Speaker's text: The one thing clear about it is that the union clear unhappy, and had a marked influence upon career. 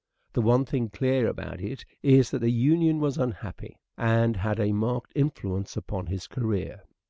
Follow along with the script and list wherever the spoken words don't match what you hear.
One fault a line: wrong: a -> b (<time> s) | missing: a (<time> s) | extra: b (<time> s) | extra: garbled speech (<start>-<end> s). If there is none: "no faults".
wrong: clear -> was (3.0 s)
extra: his (6.1 s)